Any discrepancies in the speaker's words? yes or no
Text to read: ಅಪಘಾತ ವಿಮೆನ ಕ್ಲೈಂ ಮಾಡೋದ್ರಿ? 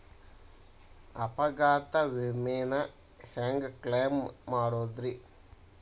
yes